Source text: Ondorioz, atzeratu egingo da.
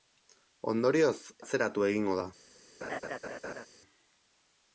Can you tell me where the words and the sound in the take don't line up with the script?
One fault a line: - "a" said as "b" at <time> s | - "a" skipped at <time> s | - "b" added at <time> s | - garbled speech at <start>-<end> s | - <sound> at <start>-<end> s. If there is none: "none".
- laugh at 2.8-3.7 s